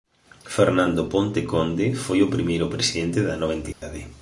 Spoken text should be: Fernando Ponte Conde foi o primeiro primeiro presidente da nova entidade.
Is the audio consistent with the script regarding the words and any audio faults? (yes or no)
no